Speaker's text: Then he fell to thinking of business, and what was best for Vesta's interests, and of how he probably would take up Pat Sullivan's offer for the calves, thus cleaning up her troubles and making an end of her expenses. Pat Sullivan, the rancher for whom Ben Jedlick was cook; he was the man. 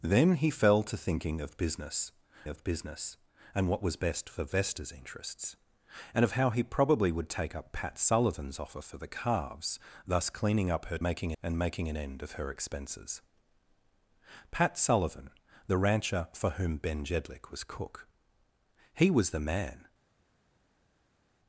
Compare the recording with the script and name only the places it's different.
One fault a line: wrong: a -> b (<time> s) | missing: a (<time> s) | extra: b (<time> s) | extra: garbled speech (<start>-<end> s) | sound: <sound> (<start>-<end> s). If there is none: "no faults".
extra: of business (2.5 s)
wrong: troubles -> making (11.0 s)